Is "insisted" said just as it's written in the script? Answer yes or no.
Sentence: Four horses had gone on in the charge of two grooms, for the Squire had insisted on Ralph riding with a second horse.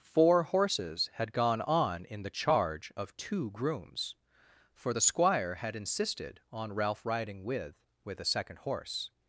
yes